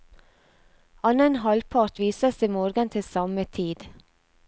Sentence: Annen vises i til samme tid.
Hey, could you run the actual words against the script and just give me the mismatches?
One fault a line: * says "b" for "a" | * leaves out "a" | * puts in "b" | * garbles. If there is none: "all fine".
* puts in "halvpart"
* puts in "morgen"